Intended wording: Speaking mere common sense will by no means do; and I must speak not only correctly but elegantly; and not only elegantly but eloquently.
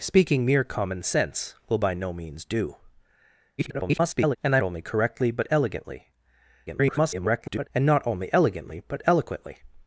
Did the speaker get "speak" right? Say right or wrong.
wrong